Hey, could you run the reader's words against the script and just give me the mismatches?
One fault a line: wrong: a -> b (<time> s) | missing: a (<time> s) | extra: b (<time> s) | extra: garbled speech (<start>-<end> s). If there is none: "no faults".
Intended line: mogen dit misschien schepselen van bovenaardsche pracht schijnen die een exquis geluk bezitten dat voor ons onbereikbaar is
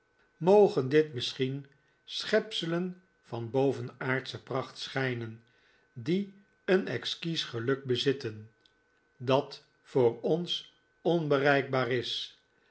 no faults